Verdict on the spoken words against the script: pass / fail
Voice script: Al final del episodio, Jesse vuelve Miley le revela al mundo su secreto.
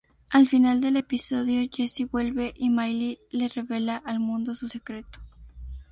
fail